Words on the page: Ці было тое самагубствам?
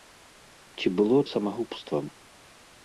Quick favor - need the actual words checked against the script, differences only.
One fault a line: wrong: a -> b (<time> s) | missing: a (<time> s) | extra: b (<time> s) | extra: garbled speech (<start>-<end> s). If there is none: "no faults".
missing: тое (1.2 s)